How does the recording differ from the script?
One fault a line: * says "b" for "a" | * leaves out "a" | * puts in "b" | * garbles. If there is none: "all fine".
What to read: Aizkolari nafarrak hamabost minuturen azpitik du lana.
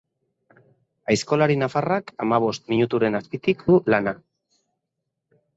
all fine